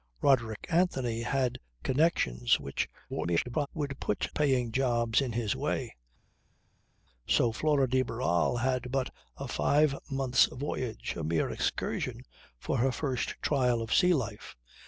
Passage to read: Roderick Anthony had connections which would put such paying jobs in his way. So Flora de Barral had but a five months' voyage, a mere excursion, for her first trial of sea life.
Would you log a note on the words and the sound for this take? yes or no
yes